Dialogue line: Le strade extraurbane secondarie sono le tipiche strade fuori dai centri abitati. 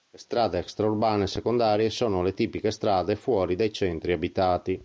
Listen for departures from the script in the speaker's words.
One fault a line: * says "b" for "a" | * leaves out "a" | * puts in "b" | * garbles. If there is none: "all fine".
all fine